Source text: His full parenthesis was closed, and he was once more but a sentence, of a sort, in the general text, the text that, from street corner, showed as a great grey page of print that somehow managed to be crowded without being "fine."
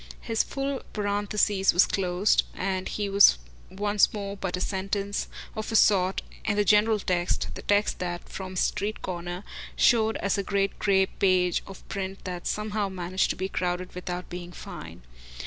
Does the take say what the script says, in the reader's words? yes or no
yes